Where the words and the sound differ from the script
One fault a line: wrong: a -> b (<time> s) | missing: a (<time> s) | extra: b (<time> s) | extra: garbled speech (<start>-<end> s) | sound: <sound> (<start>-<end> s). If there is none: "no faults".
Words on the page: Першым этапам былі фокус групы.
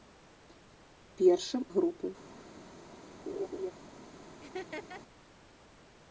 missing: этапам былі фокус (1.6 s)
sound: laugh (3.3-3.7 s)
sound: laugh (4.4-5.0 s)